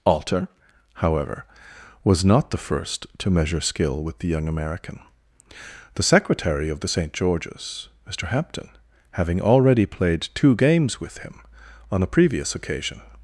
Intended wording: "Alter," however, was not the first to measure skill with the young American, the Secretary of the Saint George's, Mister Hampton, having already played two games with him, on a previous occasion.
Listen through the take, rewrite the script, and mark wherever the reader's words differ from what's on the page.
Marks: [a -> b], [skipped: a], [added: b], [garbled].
"Alter," however, was not the first to measure skill with the young American, the Secretary of the Saint George's, Mister Hampton, having already played two games with him, on a previous occasion.